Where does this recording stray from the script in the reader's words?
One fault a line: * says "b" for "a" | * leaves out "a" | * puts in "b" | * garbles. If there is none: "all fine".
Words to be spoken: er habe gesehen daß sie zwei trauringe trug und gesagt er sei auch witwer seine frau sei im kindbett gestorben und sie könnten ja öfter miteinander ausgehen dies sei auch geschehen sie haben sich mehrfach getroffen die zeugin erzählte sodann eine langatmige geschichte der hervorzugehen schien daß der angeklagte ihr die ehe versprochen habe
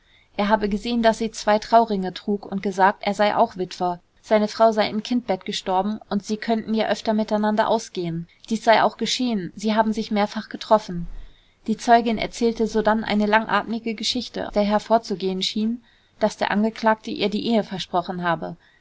all fine